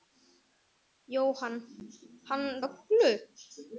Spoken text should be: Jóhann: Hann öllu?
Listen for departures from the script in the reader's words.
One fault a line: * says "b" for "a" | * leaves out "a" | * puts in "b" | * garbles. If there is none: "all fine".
all fine